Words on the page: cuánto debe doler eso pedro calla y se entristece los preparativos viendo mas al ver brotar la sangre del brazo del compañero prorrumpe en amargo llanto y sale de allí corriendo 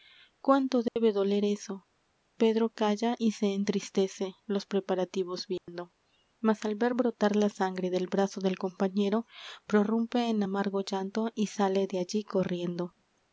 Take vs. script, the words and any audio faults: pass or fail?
fail